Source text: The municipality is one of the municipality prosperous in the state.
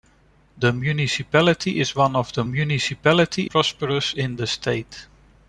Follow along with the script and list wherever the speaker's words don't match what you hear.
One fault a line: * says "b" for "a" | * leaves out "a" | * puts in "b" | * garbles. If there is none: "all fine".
all fine